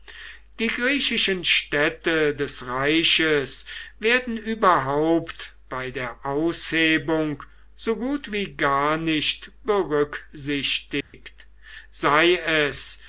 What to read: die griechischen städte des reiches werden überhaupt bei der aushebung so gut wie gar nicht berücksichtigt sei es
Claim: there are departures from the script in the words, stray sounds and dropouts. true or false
true